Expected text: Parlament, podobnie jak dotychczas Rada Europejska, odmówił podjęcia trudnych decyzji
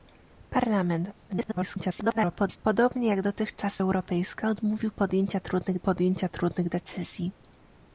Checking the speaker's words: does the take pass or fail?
fail